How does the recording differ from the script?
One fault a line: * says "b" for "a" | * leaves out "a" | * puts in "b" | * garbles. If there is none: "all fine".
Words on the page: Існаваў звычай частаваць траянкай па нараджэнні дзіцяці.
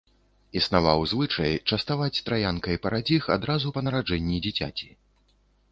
* puts in "парадзіх адразу"